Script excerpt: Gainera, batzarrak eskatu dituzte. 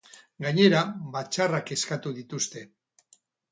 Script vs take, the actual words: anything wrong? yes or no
no